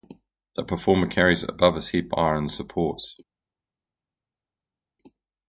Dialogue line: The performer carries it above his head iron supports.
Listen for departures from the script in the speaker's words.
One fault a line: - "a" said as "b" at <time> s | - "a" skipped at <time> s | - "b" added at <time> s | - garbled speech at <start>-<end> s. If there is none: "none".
none